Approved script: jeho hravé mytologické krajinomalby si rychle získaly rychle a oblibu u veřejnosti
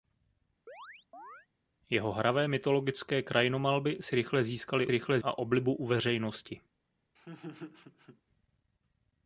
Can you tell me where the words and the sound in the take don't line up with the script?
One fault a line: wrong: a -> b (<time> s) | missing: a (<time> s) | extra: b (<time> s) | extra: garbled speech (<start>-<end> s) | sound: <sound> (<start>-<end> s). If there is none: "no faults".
sound: chirp (0.7-1.5 s)
sound: laugh (7.2-8.2 s)